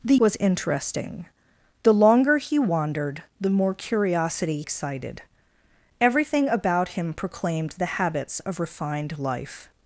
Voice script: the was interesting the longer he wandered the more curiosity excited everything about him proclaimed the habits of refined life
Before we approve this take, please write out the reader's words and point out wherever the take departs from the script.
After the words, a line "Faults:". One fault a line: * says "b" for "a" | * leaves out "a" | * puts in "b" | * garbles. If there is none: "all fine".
the was interesting the longer he wandered the more curiosity excited everything about him proclaimed the habits of refined life
Faults:
all fine